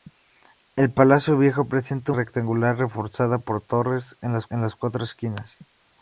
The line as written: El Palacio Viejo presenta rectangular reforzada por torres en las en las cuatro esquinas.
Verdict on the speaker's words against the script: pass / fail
pass